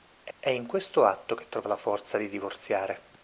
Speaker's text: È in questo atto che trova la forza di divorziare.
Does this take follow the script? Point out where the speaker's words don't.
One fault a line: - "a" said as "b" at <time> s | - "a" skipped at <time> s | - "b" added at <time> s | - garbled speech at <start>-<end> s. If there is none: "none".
- "è" added at 0.4 s